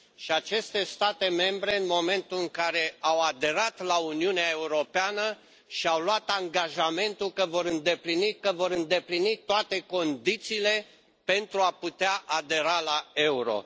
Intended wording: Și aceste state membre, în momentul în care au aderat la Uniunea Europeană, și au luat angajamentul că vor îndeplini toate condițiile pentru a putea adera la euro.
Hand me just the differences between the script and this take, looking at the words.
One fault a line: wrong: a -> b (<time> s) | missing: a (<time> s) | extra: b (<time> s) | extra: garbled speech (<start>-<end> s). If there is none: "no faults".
extra: că vor îndeplini (8.4 s)